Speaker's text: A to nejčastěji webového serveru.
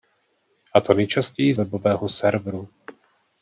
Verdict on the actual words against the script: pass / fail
pass